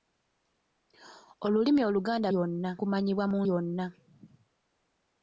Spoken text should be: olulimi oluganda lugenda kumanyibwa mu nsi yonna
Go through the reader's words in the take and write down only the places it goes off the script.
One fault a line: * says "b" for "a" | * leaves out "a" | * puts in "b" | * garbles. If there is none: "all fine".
* says "yonna" for "lugenda"
* leaves out "nsi"